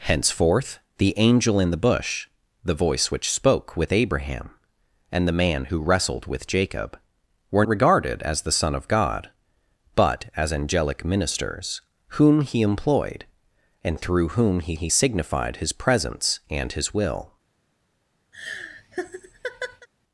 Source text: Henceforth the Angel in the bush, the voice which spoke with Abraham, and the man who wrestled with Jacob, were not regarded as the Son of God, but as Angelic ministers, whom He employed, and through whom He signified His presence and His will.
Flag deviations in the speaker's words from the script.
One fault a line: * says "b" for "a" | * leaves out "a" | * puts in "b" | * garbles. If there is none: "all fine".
* leaves out "not"
* puts in "He"